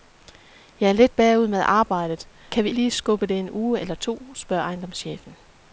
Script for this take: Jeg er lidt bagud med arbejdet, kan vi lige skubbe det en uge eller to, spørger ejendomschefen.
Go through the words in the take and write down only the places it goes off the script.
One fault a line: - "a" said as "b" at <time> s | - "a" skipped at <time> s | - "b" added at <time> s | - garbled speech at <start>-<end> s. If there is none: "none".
none